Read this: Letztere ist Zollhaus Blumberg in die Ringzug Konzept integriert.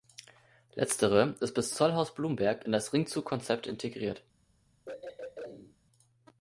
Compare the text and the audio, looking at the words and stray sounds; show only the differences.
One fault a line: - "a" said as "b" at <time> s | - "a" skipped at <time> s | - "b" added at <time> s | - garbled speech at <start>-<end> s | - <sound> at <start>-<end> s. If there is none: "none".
- "bis" added at 1.5 s
- "die" said as "das" at 2.7 s
- throat clearing at 4.9-5.8 s